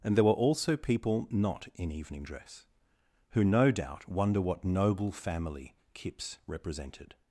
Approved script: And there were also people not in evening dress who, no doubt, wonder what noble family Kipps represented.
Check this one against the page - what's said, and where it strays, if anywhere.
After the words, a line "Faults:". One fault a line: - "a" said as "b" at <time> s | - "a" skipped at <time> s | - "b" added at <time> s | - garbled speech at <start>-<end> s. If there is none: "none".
And there were also people not in evening dress who, no doubt, wonder what noble family Kipps represented.
Faults:
none